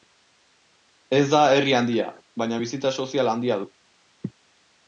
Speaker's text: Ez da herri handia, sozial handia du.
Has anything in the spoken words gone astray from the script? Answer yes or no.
yes